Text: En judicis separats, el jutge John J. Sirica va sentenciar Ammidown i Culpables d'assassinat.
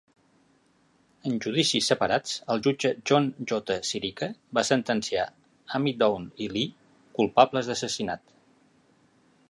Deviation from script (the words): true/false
true